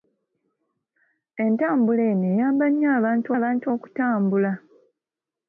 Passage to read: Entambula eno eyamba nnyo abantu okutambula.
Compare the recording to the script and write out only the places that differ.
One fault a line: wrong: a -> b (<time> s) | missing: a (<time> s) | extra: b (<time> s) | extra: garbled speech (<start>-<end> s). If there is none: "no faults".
extra: abantu (3.4 s)